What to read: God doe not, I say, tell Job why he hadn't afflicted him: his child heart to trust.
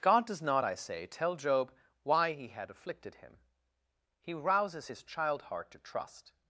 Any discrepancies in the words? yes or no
yes